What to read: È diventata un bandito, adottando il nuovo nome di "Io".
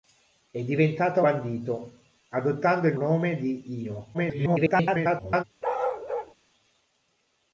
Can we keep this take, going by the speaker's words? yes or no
no